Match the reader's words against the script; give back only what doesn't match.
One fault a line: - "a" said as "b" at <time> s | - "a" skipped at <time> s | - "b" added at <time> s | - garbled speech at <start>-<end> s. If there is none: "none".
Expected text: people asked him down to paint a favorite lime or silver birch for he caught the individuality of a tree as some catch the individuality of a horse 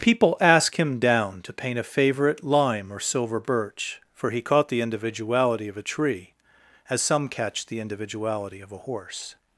- "asked" said as "ask" at 0.4 s